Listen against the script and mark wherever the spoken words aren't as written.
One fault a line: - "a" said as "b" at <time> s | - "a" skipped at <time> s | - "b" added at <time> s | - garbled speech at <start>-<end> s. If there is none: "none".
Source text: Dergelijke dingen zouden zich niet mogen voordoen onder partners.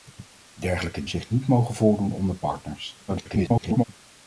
- "dingen zouden" skipped at 1.1 s
- garbled speech at 3.1-3.8 s